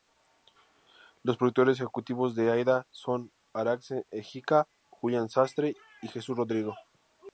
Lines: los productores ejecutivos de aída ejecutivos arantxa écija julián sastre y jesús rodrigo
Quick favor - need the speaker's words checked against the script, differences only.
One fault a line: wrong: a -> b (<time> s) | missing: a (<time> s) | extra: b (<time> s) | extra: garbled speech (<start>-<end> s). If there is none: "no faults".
wrong: ejecutivos -> son (2.9 s)